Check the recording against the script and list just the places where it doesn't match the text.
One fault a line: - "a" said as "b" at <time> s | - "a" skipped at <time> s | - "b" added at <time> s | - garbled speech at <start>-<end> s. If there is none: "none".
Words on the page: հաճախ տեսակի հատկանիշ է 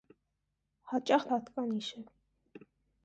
- "տեսակի" skipped at 1.3 s